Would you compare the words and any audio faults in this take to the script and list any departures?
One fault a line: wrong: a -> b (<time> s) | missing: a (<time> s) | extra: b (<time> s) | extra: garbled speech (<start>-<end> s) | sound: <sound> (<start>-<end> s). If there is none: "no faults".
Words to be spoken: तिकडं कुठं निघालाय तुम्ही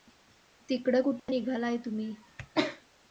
sound: dropout (1.2-1.3 s)